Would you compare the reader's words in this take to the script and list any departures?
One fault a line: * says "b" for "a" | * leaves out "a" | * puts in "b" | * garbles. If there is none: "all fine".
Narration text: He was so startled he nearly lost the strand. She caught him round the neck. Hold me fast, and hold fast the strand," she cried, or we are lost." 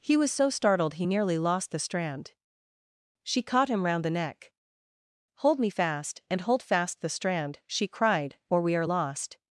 all fine